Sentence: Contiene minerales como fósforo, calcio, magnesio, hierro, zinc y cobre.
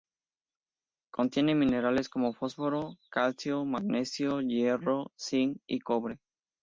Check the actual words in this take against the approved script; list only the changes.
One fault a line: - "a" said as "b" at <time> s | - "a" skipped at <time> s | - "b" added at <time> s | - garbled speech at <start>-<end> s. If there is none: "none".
none